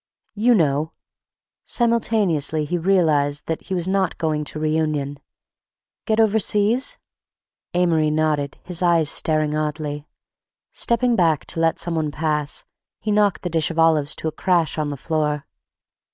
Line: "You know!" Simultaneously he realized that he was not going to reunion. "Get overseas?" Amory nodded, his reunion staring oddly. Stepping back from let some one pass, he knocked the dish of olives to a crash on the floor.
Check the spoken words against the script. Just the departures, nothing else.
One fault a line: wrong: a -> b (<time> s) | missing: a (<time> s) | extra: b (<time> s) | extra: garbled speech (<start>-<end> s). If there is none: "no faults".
wrong: reunion -> eyes (8.8 s)
wrong: from -> to (11.5 s)